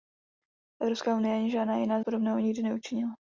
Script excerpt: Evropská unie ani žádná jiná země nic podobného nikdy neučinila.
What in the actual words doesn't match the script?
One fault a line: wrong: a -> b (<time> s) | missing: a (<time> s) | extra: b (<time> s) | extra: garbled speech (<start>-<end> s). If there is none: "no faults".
missing: země nic (2.0 s)